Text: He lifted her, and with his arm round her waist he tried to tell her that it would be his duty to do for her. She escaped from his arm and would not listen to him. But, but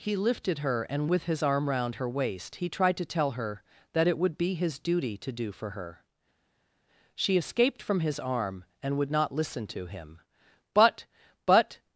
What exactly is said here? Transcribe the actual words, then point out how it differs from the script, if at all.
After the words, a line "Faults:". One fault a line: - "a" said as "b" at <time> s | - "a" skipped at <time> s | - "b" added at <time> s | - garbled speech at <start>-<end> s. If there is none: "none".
He lifted her, and with his arm round her waist he tried to tell her that it would be his duty to do for her. She escaped from his arm and would not listen to him. But, but
Faults:
none